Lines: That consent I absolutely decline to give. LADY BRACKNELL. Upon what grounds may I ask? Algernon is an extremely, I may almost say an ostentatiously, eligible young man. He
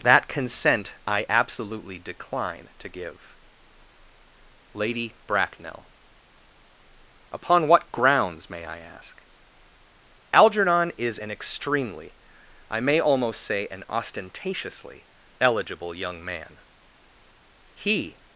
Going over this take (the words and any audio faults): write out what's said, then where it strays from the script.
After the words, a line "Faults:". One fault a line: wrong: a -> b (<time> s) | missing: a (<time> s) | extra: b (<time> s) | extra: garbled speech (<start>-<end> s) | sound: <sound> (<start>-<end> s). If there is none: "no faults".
That consent I absolutely decline to give. LADY BRACKNELL. Upon what grounds may I ask? Algernon is an extremely, I may almost say an ostentatiously, eligible young man. He
Faults:
no faults